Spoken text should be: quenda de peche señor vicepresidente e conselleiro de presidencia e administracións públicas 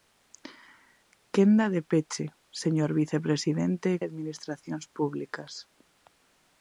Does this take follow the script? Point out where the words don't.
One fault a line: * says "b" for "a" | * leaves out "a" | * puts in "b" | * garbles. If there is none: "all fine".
* leaves out "conselleiro de presidencia"